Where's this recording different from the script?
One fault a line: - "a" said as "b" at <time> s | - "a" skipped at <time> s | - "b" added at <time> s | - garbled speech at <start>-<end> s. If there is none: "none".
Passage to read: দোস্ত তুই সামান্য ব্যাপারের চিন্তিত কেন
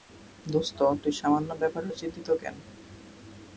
none